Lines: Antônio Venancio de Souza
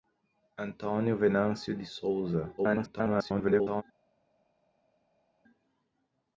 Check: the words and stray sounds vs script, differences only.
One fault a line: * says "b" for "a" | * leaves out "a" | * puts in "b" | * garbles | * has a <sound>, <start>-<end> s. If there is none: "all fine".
* garbles